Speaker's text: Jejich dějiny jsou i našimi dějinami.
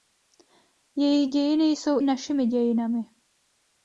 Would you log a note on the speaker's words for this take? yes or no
yes